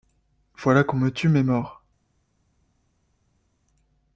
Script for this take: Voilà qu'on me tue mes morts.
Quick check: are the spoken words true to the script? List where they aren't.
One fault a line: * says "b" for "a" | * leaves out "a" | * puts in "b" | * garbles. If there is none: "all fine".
all fine